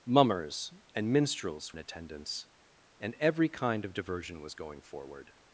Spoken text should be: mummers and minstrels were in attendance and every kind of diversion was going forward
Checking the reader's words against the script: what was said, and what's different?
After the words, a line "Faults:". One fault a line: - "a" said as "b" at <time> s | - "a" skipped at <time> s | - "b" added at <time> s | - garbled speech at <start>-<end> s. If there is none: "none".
mummers and minstrels in attendance and every kind of diversion was going forward
Faults:
- "were" skipped at 1.8 s